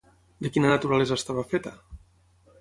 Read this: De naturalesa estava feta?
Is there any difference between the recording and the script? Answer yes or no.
yes